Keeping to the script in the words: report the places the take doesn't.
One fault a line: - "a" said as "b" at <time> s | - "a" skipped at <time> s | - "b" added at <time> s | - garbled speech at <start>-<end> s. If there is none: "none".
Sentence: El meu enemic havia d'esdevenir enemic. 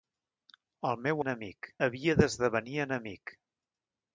none